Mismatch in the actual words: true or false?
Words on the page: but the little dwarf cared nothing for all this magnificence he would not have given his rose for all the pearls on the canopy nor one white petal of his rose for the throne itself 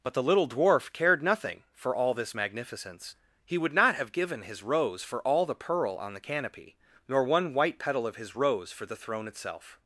true